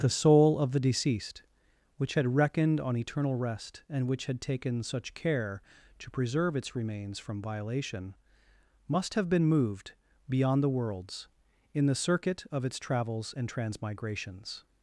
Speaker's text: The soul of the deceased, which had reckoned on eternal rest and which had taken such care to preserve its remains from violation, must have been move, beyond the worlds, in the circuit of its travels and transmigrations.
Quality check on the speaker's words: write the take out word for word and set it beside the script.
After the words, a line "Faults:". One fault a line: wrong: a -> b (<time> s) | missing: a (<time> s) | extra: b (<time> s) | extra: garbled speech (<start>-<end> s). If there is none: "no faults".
The soul of the deceased, which had reckoned on eternal rest and which had taken such care to preserve its remains from violation, must have been moved, beyond the worlds, in the circuit of its travels and transmigrations.
Faults:
wrong: move -> moved (9.4 s)